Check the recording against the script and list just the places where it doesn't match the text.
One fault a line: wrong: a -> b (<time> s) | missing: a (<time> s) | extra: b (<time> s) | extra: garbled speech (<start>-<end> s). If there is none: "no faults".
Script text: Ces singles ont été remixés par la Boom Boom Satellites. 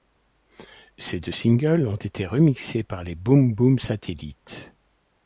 extra: deux (1.2 s)
wrong: la -> les (3.0 s)